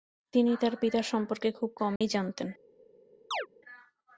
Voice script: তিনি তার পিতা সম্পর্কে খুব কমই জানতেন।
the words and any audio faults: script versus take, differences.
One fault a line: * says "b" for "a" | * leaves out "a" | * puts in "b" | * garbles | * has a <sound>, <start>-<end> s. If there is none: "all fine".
* has a dropout, 2.0-2.0 s
* has a chirp, 3.3-3.5 s